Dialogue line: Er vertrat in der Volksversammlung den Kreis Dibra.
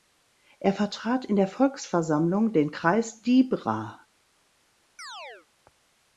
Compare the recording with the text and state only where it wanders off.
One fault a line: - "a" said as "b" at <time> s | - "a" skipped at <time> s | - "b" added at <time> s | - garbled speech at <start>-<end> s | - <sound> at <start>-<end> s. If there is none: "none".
- chirp at 5.0-5.5 s